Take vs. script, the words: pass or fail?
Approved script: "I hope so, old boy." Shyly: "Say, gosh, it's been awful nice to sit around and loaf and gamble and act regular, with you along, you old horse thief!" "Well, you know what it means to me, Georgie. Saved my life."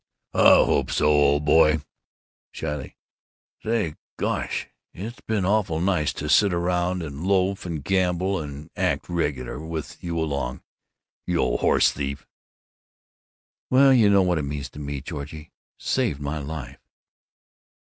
pass